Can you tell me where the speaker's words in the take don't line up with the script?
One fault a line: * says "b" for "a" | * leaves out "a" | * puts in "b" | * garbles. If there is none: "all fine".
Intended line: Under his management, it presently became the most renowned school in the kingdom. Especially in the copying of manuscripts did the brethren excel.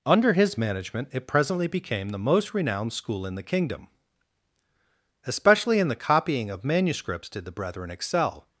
all fine